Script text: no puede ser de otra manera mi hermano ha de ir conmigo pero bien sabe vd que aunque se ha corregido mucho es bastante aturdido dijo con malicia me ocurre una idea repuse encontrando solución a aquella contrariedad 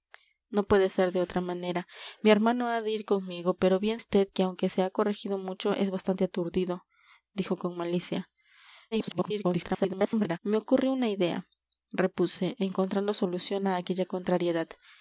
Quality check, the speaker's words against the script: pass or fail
fail